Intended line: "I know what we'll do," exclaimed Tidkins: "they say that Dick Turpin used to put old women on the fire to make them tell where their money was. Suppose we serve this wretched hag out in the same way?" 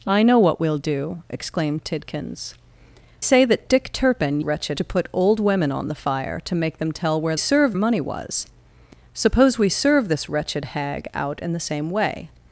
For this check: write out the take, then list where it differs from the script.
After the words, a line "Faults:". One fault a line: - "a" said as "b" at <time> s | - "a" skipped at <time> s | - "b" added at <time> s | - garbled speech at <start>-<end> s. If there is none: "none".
"I know what we'll do," exclaimed Tidkins: "say that Dick Turpin wretched to put old women on the fire to make them tell where serve money was. Suppose we serve this wretched hag out in the same way?"
Faults:
- "they" skipped at 2.5 s
- "used" said as "wretched" at 4.4 s
- "their" said as "serve" at 7.4 s